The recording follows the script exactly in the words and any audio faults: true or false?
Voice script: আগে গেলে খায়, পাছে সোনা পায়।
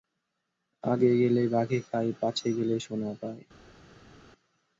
false